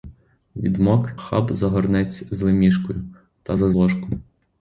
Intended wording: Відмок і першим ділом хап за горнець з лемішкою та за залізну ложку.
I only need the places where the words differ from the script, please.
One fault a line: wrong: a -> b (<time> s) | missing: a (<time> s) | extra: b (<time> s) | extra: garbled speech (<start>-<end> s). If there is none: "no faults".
missing: і першим ділом (1.1 s)
missing: залізну (3.7 s)